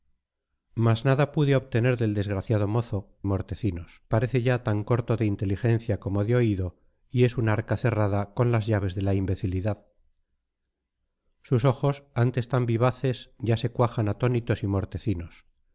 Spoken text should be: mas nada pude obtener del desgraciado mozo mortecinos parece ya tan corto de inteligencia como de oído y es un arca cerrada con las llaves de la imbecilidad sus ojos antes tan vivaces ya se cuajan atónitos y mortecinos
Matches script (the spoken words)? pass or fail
pass